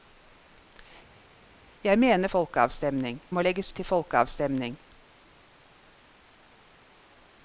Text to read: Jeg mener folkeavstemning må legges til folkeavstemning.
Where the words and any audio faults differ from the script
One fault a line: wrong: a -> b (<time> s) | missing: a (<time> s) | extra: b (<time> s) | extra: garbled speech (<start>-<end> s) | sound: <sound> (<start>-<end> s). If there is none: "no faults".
no faults